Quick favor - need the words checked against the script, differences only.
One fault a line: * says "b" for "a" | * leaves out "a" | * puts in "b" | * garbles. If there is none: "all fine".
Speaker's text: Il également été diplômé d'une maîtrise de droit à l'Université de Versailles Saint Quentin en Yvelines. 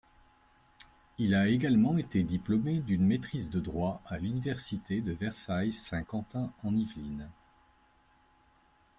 * puts in "a"